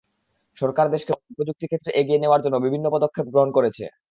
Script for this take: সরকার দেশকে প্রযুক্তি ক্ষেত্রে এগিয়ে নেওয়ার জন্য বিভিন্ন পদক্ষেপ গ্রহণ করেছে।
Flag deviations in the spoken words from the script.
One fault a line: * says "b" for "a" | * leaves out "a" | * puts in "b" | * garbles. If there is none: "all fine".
all fine